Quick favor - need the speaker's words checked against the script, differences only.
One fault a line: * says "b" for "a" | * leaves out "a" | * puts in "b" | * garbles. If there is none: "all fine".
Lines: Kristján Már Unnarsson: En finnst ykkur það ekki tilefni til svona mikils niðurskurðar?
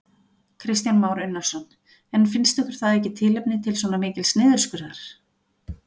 all fine